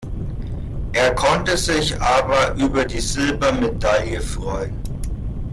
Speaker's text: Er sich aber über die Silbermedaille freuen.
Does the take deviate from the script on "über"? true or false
false